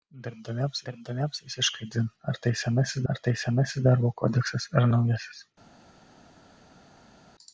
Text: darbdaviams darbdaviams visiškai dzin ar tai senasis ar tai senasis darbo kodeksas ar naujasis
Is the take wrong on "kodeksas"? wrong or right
right